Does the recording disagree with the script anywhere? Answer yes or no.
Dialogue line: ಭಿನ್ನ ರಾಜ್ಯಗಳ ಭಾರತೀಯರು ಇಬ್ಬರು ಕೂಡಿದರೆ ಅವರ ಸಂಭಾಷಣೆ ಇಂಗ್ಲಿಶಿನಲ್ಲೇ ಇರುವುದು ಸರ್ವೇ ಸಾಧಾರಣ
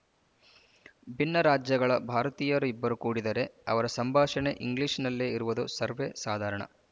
no